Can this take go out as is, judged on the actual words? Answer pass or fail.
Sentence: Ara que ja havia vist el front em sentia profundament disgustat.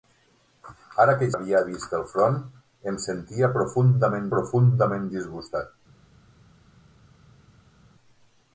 fail